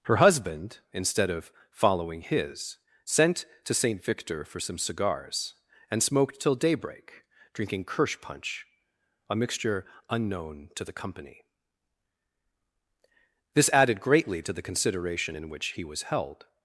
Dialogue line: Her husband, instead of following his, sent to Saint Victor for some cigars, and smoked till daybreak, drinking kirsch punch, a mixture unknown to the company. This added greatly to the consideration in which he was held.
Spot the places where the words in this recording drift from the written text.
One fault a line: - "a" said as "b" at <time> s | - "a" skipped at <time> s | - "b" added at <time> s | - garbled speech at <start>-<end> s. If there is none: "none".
none